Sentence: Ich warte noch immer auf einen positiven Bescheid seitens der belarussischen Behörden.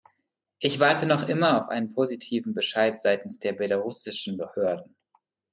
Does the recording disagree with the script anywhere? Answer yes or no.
no